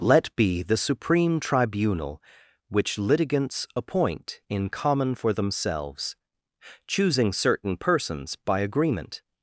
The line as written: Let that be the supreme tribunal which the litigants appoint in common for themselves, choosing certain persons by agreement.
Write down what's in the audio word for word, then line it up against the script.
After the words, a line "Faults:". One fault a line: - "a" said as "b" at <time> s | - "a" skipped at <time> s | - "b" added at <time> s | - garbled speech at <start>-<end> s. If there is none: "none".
Let be the supreme tribunal which litigants appoint in common for themselves, choosing certain persons by agreement.
Faults:
- "that" skipped at 0.3 s
- "the" skipped at 3.0 s